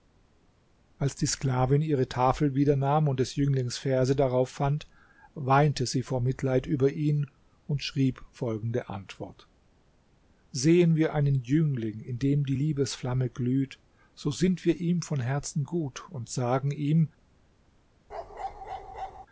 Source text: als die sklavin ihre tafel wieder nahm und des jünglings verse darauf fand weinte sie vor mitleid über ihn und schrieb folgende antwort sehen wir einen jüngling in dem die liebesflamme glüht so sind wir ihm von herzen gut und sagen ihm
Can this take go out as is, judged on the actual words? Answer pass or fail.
pass